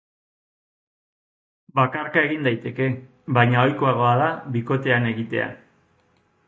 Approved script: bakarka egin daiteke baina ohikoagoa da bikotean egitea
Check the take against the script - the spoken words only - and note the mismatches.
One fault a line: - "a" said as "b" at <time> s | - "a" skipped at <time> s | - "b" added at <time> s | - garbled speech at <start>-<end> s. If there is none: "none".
none